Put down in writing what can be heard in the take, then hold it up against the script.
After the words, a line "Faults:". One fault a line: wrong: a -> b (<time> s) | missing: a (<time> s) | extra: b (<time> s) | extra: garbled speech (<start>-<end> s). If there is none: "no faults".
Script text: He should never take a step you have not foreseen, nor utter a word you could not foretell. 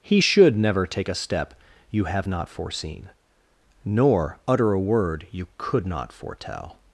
He should never take a step you have not foreseen, nor utter a word you could not foretell.
Faults:
no faults